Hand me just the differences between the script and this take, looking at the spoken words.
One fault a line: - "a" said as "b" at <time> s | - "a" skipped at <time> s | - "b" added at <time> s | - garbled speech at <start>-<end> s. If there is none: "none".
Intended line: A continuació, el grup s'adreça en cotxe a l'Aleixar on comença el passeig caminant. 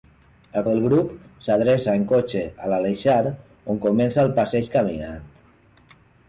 - "continuació" skipped at 0.6 s